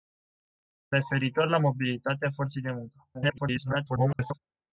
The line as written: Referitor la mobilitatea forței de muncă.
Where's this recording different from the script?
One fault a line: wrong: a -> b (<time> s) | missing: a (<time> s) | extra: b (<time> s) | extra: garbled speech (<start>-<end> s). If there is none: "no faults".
extra: garbled speech (3.1-4.4 s)